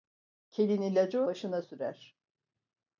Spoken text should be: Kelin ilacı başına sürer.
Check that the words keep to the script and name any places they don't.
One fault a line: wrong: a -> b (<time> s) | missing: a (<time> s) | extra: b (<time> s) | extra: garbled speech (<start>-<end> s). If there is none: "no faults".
no faults